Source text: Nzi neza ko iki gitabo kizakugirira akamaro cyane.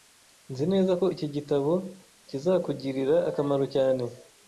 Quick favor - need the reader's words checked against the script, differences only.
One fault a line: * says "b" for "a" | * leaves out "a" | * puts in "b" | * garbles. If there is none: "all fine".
all fine